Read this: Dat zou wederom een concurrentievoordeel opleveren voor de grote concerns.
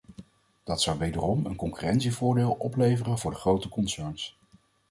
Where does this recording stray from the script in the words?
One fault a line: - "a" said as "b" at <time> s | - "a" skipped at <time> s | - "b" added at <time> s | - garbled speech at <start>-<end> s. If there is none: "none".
none